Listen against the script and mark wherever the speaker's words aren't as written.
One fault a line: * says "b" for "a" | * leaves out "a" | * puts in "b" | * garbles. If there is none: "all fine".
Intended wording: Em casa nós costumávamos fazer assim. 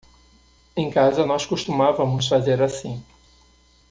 all fine